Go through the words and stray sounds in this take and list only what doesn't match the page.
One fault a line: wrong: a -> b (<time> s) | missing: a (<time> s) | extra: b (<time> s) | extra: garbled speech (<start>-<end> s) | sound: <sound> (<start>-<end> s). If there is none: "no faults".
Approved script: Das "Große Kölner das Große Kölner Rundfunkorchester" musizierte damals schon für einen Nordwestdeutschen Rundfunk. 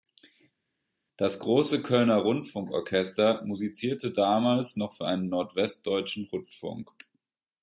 missing: das Große Kölner (2.2 s)
wrong: schon -> noch (4.7 s)